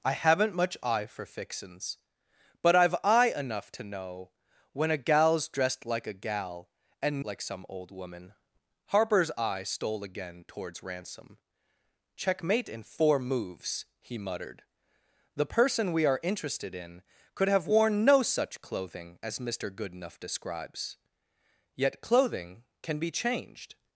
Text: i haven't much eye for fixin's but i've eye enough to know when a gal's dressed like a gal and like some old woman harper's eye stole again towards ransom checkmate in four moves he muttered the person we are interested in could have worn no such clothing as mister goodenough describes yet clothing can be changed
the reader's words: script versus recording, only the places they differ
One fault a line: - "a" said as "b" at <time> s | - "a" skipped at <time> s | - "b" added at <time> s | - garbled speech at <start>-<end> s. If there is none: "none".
none